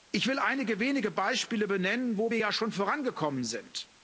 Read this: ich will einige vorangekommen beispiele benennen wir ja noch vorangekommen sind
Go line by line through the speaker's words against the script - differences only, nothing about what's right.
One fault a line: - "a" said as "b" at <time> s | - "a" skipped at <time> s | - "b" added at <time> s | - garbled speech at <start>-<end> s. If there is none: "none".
- "vorangekommen" said as "wenige" at 0.8 s
- "wo" added at 2.2 s
- "noch" said as "schon" at 2.5 s